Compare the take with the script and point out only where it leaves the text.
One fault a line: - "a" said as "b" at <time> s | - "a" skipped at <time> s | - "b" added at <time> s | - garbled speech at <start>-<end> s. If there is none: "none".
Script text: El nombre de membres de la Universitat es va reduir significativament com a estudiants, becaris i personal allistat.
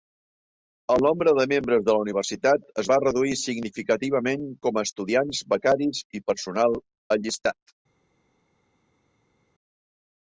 none